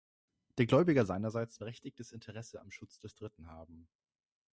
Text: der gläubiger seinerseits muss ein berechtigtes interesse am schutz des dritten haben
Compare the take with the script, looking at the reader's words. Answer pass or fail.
fail